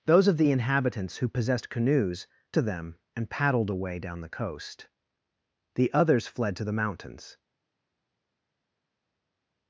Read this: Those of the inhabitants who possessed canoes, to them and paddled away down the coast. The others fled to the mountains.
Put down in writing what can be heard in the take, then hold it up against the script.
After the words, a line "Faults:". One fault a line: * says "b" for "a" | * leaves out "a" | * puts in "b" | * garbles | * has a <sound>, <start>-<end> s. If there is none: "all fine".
Those of the inhabitants who possessed canoes, to them and paddled away down the coast. The others fled to the mountains.
Faults:
all fine